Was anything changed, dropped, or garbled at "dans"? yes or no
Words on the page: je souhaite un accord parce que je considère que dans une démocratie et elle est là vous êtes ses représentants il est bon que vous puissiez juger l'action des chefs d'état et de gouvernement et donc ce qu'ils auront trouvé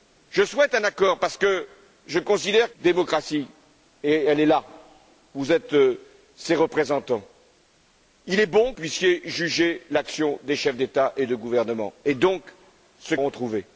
yes